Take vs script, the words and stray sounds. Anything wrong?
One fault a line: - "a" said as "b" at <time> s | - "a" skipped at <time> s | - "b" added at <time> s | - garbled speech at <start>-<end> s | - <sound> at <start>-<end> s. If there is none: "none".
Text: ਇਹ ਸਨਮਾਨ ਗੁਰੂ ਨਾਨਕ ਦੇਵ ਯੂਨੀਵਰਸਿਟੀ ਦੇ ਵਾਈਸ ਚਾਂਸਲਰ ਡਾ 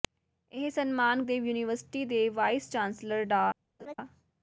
- "ਗੁਰੂ ਨਾਨਕ" skipped at 1.2 s
- laugh at 3.8-3.9 s